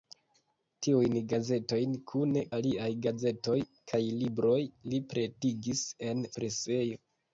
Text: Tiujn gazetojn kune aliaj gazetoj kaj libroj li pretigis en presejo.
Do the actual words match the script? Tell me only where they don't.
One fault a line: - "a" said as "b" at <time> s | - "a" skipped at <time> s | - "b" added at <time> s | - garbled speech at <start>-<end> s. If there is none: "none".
none